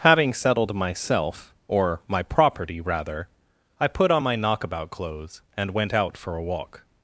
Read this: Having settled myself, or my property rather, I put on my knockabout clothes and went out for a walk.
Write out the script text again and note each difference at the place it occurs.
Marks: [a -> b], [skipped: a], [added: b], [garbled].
Having settled myself, or my property rather, I put on my knockabout clothes and went out for a walk.